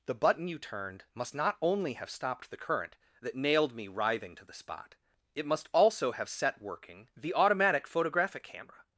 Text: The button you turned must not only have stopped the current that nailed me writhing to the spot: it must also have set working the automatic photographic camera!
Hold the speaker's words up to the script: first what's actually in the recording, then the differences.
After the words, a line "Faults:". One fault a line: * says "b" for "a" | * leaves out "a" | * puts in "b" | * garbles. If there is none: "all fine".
The button you turned must not only have stopped the current that nailed me writhing to the spot: it must also have set working the automatic photographic camera!
Faults:
all fine